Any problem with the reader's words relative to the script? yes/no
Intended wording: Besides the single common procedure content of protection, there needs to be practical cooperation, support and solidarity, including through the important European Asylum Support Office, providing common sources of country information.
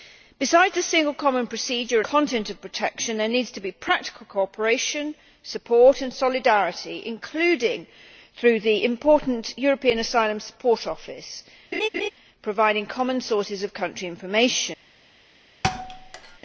no